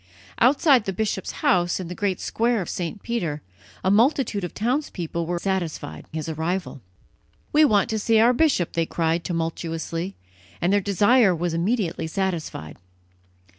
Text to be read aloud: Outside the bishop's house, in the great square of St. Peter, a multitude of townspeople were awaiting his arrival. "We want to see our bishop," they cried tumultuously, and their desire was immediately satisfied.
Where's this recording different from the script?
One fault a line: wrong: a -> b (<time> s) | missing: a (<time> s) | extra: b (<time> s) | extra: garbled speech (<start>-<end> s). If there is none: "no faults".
wrong: awaiting -> satisfied (5.3 s)